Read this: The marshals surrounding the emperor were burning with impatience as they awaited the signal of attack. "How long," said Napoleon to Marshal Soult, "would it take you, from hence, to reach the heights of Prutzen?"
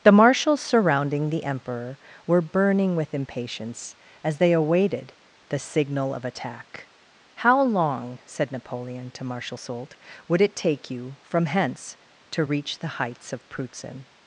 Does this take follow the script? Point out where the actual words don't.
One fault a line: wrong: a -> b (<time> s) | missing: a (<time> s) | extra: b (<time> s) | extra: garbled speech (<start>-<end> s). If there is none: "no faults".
no faults